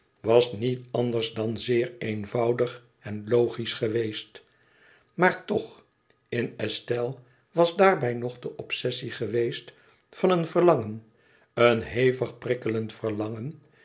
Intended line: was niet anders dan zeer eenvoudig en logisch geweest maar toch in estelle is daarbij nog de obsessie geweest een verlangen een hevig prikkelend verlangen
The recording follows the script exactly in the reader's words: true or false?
false